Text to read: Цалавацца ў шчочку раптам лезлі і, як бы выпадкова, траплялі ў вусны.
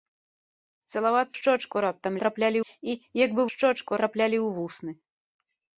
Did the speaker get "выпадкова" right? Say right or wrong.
wrong